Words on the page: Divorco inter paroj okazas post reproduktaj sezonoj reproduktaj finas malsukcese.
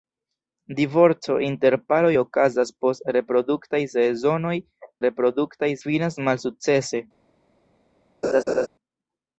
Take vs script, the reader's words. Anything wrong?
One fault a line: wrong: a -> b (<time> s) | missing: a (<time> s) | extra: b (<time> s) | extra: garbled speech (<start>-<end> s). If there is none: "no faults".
no faults